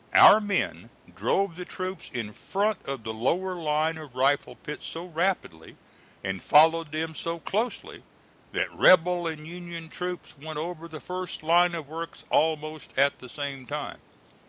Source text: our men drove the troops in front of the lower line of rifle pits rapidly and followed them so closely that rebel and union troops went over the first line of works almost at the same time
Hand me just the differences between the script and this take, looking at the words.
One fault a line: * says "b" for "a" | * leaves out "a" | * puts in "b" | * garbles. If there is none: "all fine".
* puts in "so"